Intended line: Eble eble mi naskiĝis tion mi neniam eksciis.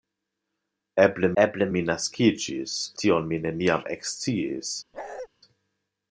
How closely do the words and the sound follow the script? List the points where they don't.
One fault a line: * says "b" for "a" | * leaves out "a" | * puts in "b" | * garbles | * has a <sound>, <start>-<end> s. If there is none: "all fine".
* has a bark, 4.9-5.3 s